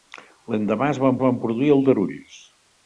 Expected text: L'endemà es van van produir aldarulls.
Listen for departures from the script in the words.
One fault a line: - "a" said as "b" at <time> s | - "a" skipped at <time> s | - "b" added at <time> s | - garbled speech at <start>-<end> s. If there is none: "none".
none